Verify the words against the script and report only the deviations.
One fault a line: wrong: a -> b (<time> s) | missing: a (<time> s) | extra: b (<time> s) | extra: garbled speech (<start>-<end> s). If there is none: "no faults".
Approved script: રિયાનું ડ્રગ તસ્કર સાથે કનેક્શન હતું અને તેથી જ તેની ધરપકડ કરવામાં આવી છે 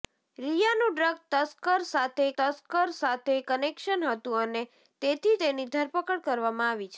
extra: તસ્કર સાથે (2.4 s)
missing: જ (5.3 s)